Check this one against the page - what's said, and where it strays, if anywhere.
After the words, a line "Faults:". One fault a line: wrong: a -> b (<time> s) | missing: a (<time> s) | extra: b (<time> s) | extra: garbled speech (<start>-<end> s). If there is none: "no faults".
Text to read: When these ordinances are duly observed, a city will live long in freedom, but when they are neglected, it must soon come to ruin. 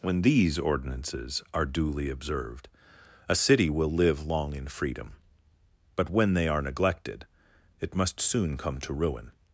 When these ordinances are duly observed, a city will live long in freedom, but when they are neglected, it must soon come to ruin.
Faults:
no faults